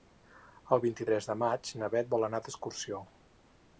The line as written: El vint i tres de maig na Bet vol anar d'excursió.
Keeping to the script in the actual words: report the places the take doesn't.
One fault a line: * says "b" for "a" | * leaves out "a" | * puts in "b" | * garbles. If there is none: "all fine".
all fine